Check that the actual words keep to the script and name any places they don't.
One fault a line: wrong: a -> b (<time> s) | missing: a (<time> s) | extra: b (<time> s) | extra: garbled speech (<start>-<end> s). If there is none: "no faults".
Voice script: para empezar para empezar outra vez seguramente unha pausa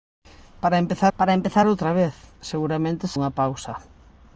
no faults